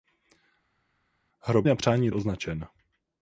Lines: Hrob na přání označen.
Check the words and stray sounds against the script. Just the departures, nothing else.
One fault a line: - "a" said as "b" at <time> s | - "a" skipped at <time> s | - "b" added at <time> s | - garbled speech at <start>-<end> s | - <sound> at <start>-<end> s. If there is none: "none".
none